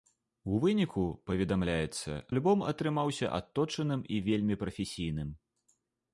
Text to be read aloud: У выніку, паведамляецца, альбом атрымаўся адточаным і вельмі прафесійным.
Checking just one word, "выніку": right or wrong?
right